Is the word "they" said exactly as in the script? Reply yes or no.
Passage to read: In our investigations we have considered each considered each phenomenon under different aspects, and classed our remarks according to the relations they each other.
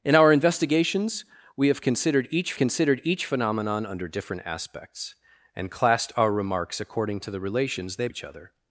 yes